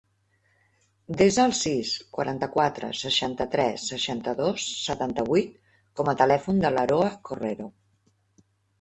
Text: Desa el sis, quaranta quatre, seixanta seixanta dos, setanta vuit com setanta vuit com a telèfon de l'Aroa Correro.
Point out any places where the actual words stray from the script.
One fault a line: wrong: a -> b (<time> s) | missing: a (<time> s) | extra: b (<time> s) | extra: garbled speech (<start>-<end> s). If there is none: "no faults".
extra: tres (3.6 s)
missing: setanta vuit com (6.1 s)